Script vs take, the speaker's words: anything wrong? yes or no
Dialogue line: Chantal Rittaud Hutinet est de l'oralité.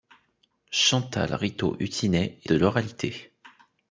no